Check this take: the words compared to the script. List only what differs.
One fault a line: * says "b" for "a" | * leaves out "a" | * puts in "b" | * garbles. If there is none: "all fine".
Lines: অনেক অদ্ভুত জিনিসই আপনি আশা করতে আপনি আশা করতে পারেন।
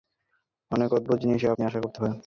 * leaves out "আপনি আশা করতে"